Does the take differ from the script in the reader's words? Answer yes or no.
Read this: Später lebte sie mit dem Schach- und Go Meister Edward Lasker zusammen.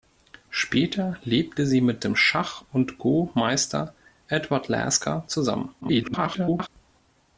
yes